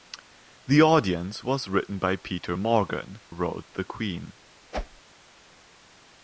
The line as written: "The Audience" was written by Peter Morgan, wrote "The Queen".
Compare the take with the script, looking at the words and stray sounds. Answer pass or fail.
fail